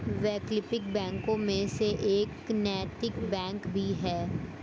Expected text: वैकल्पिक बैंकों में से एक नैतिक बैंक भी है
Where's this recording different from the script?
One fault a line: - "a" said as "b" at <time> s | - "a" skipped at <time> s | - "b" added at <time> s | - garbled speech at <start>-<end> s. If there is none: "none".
none